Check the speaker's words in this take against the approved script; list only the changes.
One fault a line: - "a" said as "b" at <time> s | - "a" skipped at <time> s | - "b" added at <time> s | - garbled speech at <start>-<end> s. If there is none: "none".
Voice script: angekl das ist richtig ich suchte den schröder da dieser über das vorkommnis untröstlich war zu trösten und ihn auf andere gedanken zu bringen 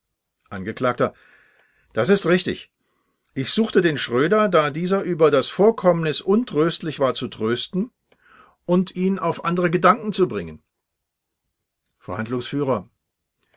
none